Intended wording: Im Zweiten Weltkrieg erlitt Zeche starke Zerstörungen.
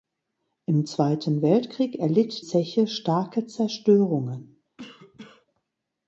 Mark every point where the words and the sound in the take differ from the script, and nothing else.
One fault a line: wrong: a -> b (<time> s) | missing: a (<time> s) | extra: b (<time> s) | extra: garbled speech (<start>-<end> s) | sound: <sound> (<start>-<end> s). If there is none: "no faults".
sound: cough (4.8-5.5 s)